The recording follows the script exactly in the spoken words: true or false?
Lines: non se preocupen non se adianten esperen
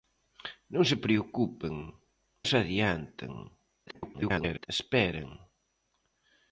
false